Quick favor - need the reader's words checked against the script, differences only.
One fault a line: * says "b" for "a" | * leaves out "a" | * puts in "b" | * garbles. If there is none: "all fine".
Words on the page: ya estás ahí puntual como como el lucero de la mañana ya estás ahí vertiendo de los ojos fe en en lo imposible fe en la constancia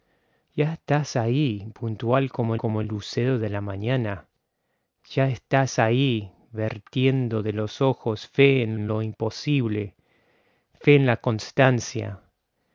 all fine